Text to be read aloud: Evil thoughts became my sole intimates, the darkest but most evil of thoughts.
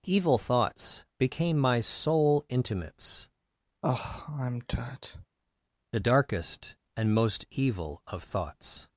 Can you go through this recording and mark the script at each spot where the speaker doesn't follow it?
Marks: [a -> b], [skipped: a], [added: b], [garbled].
Evil thoughts became my sole intimates, the darkest [but -> and] most evil of thoughts.